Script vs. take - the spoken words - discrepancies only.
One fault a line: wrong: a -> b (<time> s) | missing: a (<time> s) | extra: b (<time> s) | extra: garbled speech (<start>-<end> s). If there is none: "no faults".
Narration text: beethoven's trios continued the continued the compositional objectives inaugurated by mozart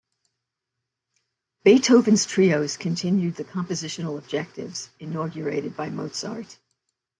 missing: continued the (3.4 s)